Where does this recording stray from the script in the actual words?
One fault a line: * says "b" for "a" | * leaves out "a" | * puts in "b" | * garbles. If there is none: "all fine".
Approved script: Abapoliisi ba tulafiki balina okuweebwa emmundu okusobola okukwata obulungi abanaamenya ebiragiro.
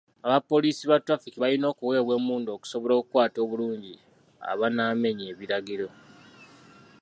all fine